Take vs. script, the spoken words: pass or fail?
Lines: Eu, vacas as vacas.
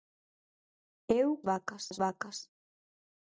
pass